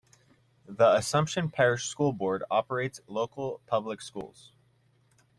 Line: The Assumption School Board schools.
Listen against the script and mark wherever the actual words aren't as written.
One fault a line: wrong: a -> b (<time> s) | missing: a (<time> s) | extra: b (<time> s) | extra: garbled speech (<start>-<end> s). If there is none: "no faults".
extra: Parish (1.5 s)
extra: operates local public (2.5 s)